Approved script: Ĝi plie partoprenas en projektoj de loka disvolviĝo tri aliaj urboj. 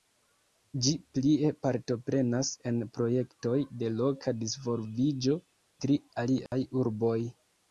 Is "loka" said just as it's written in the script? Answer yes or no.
yes